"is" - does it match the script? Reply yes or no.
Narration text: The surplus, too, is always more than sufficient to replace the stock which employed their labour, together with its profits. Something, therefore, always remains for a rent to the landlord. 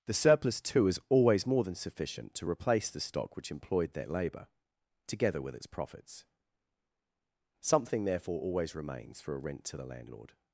yes